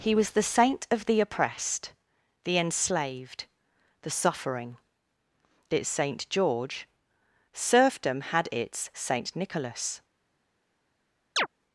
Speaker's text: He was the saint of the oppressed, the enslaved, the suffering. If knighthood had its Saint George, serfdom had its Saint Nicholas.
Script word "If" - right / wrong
wrong